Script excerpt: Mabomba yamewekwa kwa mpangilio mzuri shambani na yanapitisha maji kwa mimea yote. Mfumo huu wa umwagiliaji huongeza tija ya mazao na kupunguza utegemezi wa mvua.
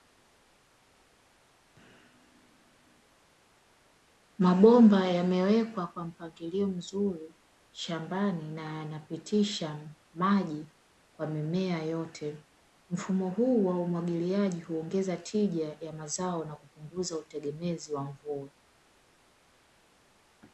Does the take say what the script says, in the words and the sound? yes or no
yes